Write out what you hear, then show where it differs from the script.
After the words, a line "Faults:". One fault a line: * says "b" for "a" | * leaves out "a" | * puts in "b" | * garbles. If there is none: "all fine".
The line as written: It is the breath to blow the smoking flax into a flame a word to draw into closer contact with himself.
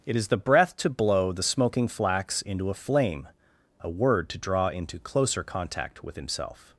It is the breath to blow the smoking flax into a flame a word to draw into closer contact with himself.
Faults:
all fine